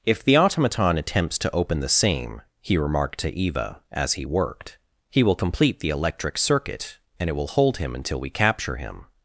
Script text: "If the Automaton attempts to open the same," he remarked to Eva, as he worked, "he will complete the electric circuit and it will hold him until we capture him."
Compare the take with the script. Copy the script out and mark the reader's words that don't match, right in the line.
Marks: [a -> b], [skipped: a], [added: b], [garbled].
"If the Automaton attempts to open the same," he remarked to Eva, as he worked, "he will complete the electric circuit and it will hold him until we capture him."